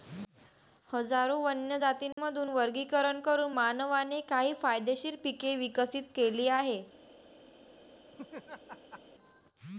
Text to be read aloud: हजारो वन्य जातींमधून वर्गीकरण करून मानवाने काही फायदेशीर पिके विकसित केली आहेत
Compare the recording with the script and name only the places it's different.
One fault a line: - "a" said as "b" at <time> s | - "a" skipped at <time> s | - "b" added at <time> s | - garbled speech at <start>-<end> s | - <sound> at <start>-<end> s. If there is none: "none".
- dropout at 2.1-2.2 s
- laugh at 8.1-9.0 s